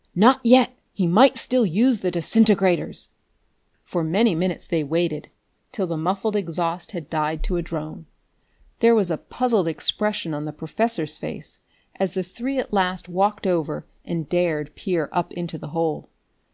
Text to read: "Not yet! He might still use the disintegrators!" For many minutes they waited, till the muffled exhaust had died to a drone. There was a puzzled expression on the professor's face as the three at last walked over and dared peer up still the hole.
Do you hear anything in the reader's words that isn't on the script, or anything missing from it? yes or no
yes